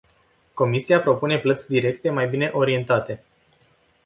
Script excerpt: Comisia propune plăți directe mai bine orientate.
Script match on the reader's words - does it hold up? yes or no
yes